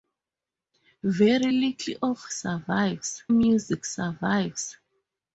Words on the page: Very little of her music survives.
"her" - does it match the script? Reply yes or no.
no